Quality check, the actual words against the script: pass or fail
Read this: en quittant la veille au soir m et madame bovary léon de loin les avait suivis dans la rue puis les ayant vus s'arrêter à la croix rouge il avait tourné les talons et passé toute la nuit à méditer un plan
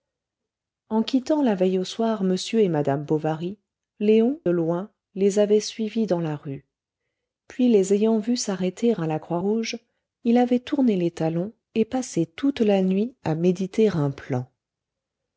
fail